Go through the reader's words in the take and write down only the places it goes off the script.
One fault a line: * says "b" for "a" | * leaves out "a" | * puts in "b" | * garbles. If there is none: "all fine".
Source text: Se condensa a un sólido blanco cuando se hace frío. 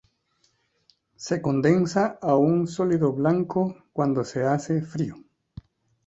all fine